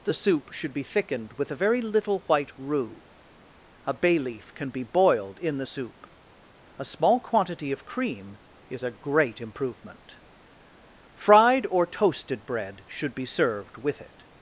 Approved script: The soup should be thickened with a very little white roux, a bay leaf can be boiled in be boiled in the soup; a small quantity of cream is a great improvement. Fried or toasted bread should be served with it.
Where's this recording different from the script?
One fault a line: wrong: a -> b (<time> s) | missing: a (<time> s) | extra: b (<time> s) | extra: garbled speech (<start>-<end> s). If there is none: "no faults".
missing: be boiled in (5.6 s)